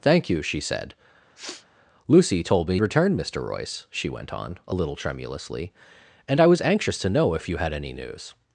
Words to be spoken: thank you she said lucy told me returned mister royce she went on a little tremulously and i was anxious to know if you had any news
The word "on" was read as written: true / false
true